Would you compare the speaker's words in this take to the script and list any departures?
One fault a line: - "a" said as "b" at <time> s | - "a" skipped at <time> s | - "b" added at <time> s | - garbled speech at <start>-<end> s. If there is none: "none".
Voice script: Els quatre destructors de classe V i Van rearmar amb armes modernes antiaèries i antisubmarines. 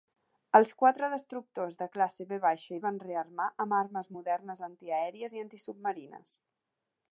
none